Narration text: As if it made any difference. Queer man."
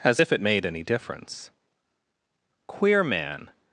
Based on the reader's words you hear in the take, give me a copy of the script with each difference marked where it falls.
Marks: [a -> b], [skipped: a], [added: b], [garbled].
As if it made any difference. Queer man."